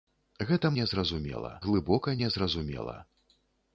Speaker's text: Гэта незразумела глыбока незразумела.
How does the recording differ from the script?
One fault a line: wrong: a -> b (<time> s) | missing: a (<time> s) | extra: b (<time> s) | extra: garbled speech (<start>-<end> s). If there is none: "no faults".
no faults